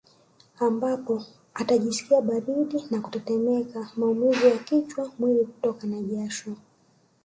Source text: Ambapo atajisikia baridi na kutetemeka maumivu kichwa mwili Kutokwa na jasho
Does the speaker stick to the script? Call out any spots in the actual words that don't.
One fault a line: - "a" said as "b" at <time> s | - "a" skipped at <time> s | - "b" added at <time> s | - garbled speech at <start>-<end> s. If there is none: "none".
- "ya" added at 4.5 s